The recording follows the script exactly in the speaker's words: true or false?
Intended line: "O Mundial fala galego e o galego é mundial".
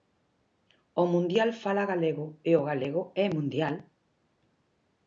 true